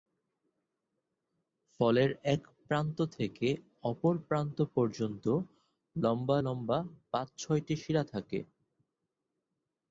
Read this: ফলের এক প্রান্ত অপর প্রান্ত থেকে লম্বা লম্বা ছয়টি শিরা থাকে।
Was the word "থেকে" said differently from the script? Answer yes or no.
yes